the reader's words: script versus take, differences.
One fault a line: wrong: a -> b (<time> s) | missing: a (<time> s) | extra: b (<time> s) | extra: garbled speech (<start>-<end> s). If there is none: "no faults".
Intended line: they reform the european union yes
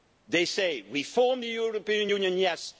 extra: say (0.5 s)